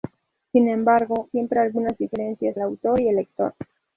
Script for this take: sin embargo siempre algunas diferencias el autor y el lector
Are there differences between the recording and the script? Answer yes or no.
no